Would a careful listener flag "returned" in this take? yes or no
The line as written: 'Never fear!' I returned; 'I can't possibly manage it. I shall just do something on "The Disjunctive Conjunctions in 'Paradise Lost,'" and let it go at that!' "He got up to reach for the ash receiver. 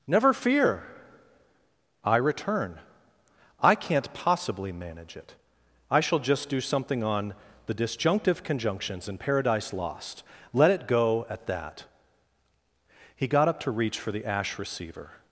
yes